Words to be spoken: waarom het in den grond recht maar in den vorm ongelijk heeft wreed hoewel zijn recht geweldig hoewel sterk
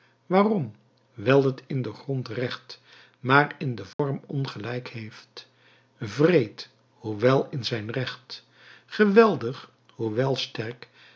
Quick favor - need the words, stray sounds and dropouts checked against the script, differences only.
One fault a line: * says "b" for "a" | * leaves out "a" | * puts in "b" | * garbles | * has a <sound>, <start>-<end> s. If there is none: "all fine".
* puts in "wijl"
* has a dropout, 3.9-4.0 s
* puts in "in"